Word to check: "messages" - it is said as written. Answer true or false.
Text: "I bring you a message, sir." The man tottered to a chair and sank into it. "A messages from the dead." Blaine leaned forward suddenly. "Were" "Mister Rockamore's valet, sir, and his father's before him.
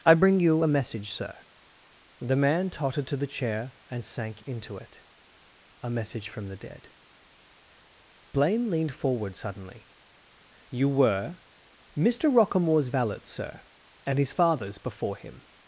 false